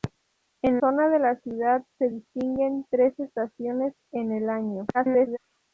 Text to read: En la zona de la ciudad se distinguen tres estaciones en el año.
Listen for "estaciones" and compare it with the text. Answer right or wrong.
right